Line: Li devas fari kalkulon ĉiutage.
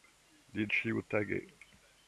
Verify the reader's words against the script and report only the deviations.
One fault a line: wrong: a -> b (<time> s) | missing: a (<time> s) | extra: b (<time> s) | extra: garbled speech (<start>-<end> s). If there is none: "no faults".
missing: devas fari kalkulon (0.7 s)